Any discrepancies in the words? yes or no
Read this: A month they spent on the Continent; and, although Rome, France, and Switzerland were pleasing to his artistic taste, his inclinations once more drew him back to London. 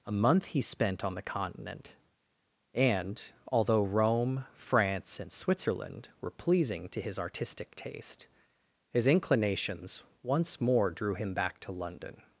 yes